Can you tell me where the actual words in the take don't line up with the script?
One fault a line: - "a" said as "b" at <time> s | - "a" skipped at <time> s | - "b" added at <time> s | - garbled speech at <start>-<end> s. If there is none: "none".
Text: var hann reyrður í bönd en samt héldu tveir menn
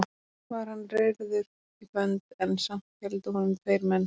- "honum" added at 3.4 s